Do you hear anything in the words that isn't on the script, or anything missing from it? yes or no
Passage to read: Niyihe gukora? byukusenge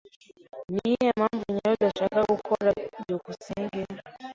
yes